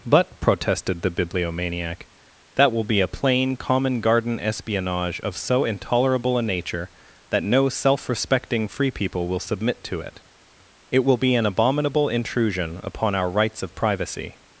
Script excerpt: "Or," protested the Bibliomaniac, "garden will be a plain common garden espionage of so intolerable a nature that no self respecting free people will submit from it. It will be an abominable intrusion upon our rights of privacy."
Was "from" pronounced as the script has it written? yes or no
no